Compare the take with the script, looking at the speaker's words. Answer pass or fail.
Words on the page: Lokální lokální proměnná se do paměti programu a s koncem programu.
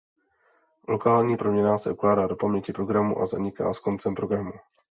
fail